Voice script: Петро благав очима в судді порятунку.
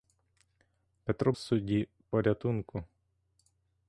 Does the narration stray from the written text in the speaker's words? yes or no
yes